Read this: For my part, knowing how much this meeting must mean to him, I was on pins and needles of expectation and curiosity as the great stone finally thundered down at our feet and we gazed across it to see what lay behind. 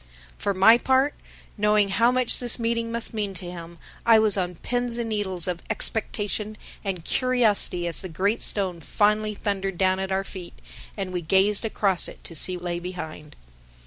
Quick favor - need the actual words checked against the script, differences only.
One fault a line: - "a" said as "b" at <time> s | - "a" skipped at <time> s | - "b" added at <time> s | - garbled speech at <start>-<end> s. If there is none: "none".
- "what" skipped at 12.6 s